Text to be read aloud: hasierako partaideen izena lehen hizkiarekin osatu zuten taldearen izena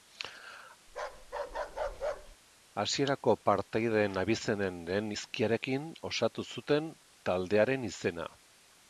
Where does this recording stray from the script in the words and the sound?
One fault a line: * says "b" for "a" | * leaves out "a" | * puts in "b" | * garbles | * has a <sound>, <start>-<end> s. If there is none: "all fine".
* has a bark, 0.9-2.4 s
* says "abizenen" for "izena"